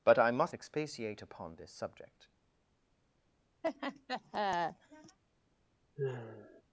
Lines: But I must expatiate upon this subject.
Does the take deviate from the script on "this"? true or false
false